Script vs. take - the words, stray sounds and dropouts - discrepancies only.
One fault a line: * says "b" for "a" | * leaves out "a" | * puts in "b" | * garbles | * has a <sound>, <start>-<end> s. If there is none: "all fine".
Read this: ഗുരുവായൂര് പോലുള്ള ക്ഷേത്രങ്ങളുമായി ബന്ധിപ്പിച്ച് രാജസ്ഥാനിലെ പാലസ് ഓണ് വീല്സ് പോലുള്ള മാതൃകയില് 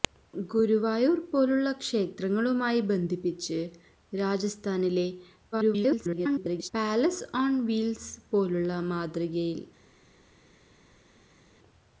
* garbles